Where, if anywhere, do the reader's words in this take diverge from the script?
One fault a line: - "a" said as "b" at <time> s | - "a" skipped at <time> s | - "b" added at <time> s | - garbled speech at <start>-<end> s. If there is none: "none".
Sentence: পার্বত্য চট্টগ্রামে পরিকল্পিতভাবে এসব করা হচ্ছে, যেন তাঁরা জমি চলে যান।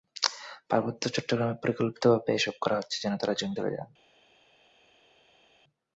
none